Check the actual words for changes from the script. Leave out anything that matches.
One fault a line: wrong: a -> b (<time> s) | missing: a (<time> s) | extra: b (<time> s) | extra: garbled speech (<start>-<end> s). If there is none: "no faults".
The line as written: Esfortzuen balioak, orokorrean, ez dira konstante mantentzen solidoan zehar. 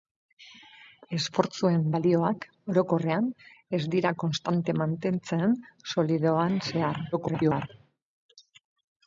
extra: garbled speech (7.1-7.7 s)